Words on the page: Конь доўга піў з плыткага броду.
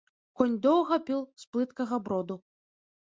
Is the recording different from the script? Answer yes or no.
no